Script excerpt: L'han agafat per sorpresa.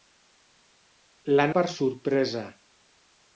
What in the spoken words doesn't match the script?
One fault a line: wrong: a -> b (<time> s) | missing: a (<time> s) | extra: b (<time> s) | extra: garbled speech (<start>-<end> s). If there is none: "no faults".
missing: agafat (1.5 s)